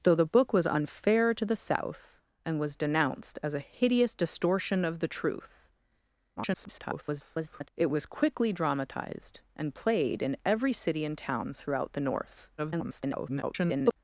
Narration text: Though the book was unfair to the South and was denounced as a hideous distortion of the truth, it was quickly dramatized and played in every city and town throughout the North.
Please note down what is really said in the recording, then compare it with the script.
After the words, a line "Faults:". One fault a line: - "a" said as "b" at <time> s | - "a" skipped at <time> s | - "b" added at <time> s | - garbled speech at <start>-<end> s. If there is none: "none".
Though the book was unfair to the South and was denounced as a hideous distortion of the truth, [garbled] it was quickly dramatized and played in every city and town throughout the North. [garbled]
Faults:
- garbled speech at 6.4-7.7 s
- garbled speech at 12.6-14.0 s